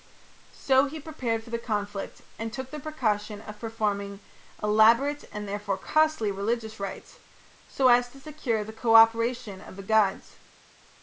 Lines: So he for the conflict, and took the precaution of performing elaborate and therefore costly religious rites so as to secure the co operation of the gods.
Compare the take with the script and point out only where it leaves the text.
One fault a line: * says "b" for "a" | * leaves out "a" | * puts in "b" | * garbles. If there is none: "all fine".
* puts in "prepared"